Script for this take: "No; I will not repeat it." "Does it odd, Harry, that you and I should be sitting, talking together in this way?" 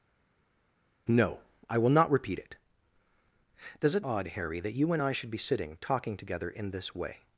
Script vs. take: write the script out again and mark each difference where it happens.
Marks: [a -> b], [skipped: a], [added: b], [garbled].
"No; I will not repeat it." "Does it odd, Harry, that you and I should be sitting, talking together in this way?"